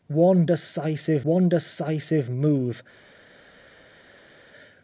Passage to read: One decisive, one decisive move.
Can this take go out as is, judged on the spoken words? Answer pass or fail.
pass